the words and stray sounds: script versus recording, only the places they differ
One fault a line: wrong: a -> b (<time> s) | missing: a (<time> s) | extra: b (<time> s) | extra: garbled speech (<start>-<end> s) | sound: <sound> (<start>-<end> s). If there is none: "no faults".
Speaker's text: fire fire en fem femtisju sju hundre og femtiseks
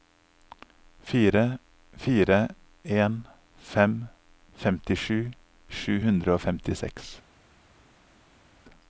no faults